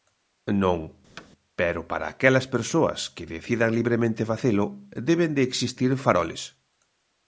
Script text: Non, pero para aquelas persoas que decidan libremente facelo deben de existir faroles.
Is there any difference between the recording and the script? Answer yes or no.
no